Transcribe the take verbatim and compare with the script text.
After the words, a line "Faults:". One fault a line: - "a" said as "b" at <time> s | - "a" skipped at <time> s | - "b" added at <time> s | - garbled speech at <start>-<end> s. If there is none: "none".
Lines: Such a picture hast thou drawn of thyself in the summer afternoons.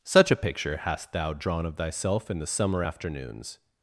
Such a picture hast thou drawn of thyself in the summer afternoons.
Faults:
none